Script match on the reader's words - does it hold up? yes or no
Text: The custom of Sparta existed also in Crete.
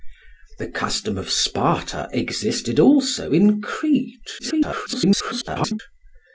no